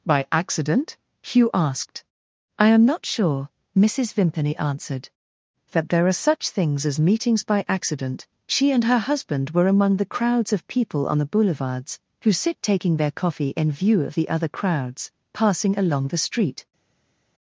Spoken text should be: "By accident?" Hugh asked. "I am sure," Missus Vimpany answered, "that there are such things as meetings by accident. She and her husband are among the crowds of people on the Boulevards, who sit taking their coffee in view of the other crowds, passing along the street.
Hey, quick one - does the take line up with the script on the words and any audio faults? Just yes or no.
no